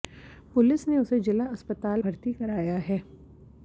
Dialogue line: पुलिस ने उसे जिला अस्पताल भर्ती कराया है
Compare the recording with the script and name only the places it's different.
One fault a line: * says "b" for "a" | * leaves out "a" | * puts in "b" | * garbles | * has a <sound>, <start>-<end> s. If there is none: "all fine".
all fine